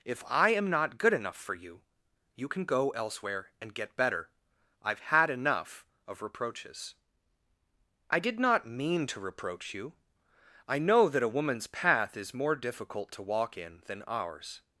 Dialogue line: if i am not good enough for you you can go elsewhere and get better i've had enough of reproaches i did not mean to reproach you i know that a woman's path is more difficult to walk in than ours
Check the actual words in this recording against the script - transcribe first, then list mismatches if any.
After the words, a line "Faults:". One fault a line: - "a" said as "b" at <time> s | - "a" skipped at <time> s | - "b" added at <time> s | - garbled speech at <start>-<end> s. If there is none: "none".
if i am not good enough for you you can go elsewhere and get better i've had enough of reproaches i did not mean to reproach you i know that a woman's path is more difficult to walk in than ours
Faults:
none